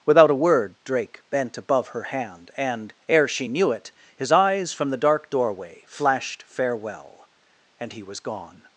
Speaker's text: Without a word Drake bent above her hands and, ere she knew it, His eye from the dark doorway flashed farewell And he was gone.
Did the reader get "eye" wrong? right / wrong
wrong